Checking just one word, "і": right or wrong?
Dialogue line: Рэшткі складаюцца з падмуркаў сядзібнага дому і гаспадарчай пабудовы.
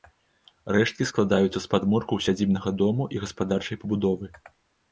right